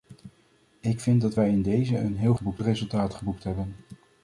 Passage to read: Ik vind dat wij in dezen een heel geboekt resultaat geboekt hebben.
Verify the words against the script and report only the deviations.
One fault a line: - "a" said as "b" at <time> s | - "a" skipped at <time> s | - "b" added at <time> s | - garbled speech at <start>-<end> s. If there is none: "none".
none